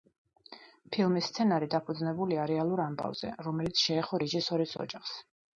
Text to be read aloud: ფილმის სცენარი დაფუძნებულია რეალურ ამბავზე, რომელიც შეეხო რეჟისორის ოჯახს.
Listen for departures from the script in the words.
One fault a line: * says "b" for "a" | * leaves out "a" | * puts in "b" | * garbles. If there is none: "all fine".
all fine